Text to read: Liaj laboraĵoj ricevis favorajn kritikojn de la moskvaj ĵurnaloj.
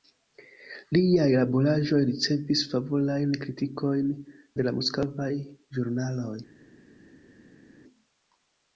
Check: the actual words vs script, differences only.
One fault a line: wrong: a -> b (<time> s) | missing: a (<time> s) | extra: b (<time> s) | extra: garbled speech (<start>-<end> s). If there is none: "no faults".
no faults